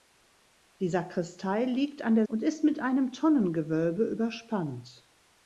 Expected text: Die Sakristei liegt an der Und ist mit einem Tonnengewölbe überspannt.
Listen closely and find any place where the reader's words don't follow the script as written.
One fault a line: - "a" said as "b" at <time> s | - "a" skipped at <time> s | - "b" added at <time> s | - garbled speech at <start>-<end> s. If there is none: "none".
none